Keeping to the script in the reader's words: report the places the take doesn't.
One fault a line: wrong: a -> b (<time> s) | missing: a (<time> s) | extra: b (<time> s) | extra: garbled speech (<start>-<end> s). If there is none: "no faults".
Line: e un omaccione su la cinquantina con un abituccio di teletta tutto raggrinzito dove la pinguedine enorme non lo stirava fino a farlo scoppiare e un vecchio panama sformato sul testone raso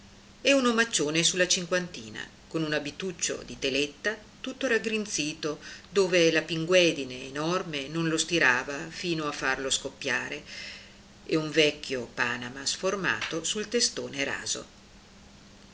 no faults